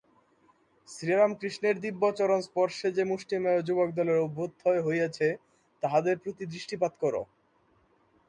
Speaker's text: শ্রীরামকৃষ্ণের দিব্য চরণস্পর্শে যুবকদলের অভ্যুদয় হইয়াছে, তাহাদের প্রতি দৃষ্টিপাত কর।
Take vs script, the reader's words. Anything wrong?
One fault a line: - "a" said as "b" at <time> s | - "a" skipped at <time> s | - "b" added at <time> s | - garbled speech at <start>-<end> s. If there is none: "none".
- "যে মুষ্টিমেয়" added at 2.9 s